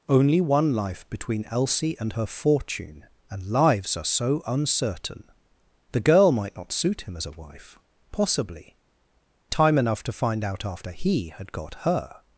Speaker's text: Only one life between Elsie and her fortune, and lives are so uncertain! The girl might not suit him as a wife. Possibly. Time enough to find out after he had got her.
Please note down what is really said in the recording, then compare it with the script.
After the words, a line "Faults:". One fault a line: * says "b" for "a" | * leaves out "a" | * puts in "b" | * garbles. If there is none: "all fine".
Only one life between Elsie and her fortune, and lives are so uncertain! The girl might not suit him as a wife. Possibly. Time enough to find out after he had got her.
Faults:
all fine